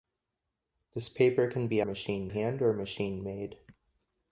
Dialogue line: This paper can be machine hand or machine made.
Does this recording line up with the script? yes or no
yes